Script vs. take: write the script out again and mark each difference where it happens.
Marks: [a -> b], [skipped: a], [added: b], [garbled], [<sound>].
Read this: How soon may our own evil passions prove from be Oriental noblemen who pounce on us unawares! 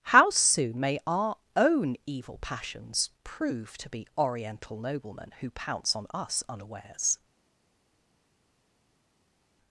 How soon may our own evil passions prove [from -> to] be Oriental noblemen who pounce on us unawares!